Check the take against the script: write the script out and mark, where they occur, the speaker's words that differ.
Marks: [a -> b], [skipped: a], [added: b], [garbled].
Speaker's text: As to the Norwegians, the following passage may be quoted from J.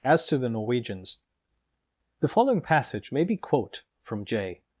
As to the Norwegians, the following passage may be [quoted -> quote] from J.